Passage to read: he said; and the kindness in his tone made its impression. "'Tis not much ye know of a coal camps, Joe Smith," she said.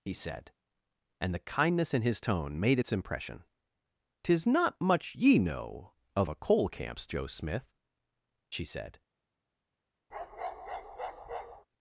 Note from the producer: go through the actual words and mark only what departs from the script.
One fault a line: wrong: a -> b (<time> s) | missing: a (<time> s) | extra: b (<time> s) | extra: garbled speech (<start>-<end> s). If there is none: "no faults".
no faults